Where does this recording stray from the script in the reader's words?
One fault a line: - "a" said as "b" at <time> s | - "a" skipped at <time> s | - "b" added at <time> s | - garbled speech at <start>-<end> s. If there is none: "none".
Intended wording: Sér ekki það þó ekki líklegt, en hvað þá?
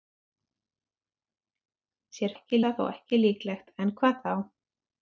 none